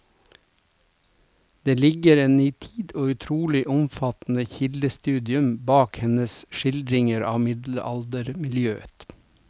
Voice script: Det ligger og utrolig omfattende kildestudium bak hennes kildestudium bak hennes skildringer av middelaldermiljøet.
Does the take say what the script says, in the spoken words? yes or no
no